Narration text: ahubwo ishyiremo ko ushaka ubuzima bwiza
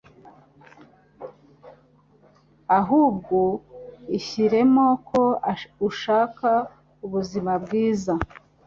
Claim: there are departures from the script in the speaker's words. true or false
false